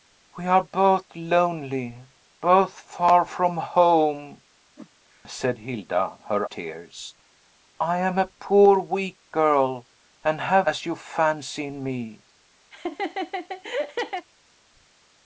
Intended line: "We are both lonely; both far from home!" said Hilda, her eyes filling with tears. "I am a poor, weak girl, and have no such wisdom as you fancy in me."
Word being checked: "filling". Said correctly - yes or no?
no